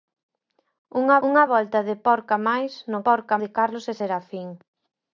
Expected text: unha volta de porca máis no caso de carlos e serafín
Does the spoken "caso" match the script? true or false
false